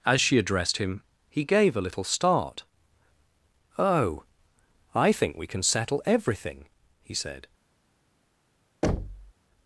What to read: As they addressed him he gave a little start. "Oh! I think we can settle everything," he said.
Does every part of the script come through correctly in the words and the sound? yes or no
no